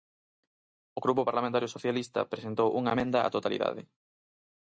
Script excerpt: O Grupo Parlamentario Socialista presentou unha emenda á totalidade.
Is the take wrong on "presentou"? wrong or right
right